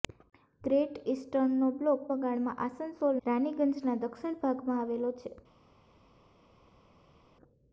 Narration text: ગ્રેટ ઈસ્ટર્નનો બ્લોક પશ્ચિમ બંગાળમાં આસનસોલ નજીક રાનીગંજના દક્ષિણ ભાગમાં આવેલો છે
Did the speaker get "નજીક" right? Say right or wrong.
wrong